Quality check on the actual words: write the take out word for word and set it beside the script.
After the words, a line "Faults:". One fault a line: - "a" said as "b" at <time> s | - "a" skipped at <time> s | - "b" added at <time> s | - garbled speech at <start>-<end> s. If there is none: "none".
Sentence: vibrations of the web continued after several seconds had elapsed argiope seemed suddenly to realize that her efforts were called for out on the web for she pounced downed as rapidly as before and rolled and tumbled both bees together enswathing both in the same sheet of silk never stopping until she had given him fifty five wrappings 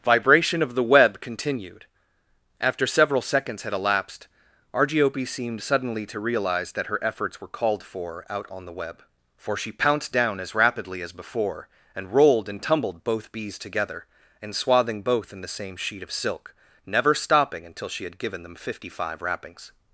vibration of the web continued after several seconds had elapsed argiope seemed suddenly to realize that her efforts were called for out on the web for she pounced down as rapidly as before and rolled and tumbled both bees together enswathing both in the same sheet of silk never stopping until she had given them fifty five wrappings
Faults:
- "vibrations" said as "vibration" at 0.0 s
- "downed" said as "down" at 10.1 s
- "him" said as "them" at 18.4 s